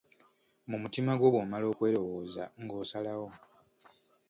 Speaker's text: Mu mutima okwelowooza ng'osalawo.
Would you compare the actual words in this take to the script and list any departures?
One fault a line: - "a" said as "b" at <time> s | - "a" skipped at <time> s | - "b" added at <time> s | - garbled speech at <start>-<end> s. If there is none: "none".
- "gwo bw'omala" added at 1.2 s